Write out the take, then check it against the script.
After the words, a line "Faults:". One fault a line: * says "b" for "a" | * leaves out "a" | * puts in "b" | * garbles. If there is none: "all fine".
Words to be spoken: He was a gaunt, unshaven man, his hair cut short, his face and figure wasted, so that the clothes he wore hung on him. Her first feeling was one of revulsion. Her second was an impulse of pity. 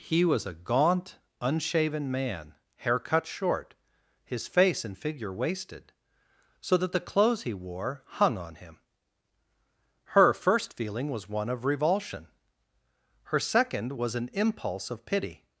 He was a gaunt, unshaven man, hair cut short, his face and figure wasted, so that the clothes he wore hung on him. Her first feeling was one of revulsion. Her second was an impulse of pity.
Faults:
* leaves out "his"